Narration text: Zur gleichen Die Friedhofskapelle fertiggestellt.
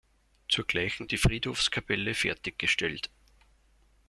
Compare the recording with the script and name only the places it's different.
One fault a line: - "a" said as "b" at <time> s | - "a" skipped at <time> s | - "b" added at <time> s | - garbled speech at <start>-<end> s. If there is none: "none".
none